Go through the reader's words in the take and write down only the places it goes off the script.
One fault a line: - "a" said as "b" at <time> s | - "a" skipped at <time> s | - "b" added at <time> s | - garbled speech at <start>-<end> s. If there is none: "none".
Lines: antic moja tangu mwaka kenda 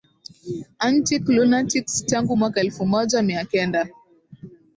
- "moja" said as "lunatics" at 1.3 s
- "elfu moja mia" added at 2.6 s